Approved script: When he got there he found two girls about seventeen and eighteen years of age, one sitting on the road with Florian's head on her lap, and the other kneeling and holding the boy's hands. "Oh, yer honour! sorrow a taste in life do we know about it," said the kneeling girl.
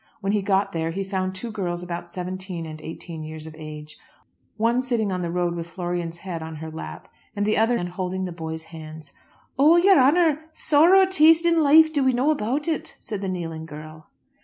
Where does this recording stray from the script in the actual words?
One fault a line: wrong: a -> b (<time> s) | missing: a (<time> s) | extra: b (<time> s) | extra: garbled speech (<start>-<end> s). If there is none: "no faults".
missing: kneeling (7.8 s)